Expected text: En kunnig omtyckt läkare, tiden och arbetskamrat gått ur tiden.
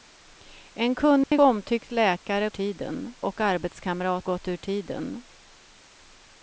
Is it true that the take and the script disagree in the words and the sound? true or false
true